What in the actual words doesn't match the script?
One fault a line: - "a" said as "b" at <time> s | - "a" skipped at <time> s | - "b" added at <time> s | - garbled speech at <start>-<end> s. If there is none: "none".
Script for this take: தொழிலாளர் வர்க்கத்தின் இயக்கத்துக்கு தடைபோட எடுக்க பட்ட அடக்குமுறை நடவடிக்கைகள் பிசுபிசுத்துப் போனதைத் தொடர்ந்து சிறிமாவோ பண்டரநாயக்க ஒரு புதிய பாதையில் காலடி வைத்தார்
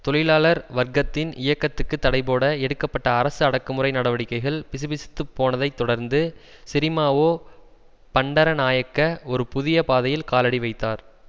- "அரசு" added at 3.1 s